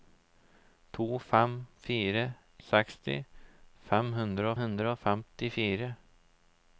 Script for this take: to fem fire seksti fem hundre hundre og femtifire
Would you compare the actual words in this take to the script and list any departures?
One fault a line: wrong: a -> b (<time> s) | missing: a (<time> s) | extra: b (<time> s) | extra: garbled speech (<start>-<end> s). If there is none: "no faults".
no faults